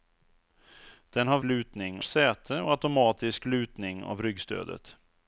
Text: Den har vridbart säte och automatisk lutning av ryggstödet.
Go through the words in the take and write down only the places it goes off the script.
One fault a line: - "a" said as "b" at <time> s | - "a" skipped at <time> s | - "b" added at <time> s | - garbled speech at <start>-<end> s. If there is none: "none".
- "vridbart" said as "lutning" at 1.4 s